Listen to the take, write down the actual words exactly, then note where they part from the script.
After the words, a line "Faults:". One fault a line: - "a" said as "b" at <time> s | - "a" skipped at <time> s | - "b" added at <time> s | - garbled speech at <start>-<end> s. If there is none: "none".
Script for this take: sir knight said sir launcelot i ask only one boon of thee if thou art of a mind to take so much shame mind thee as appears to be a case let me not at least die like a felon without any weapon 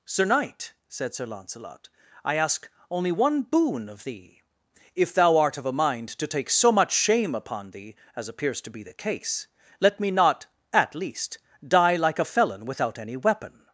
sir knight said sir launcelot i ask only one boon of thee if thou art of a mind to take so much shame upon thee as appears to be the case let me not at least die like a felon without any weapon
Faults:
- "mind" said as "upon" at 7.4 s
- "a" said as "the" at 8.8 s